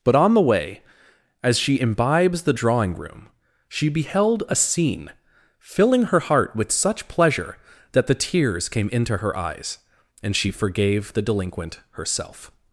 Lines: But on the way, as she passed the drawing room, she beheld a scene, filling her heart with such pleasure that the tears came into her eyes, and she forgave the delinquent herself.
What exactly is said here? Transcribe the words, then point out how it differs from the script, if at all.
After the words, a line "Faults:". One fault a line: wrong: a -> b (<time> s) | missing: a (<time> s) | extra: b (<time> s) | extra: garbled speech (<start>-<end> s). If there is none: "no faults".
But on the way, as she imbibes the drawing room, she beheld a scene, filling her heart with such pleasure that the tears came into her eyes, and she forgave the delinquent herself.
Faults:
wrong: passed -> imbibes (1.8 s)